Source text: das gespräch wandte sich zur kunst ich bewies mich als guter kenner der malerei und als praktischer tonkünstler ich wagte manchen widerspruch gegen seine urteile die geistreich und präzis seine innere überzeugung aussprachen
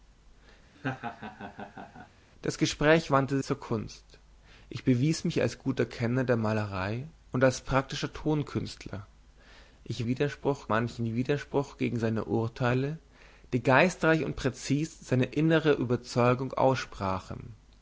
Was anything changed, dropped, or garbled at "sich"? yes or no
yes